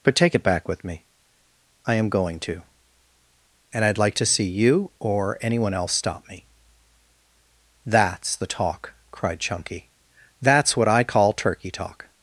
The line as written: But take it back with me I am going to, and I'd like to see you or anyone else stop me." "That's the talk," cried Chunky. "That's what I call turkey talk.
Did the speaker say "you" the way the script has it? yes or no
yes